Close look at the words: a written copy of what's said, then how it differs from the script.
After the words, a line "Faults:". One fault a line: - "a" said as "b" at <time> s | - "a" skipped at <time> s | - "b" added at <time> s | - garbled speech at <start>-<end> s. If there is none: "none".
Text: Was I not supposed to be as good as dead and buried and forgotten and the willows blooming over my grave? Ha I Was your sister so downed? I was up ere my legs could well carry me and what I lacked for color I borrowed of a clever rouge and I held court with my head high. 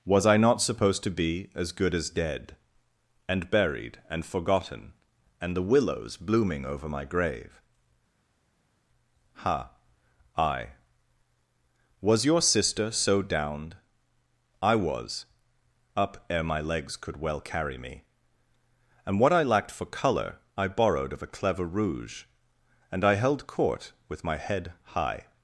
Was I not supposed to be as good as dead and buried and forgotten and the willows blooming over my grave? Ha I Was your sister so downed? I was up ere my legs could well carry me and what I lacked for color I borrowed of a clever rouge and I held court with my head high.
Faults:
none